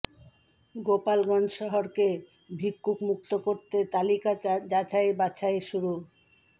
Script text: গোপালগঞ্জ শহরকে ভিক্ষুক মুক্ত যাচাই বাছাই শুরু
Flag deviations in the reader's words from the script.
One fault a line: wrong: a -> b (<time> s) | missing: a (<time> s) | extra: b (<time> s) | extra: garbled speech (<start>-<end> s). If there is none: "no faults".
extra: করতে তালিকা (3.5 s)